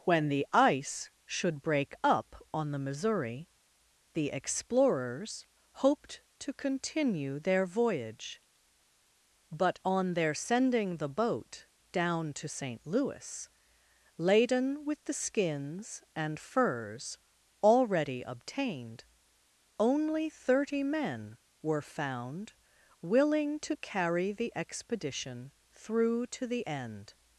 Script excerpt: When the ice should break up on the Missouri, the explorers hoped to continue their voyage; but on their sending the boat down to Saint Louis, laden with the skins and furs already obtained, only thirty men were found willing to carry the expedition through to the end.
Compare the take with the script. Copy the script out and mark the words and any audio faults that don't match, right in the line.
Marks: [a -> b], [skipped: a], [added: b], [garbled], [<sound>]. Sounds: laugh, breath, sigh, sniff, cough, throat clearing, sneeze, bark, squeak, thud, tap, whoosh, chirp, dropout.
When the ice should break up on the Missouri, the explorers hoped to continue their voyage; but on their sending the boat down to Saint Louis, laden with the skins and furs already obtained, only thirty men were found willing to carry the expedition through to the end.